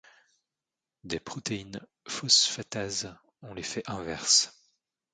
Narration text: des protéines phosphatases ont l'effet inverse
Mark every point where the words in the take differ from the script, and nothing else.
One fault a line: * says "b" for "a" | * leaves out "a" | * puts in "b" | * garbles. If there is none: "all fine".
all fine